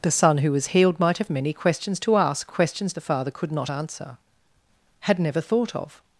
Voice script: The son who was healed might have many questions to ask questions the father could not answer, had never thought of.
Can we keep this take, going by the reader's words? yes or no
yes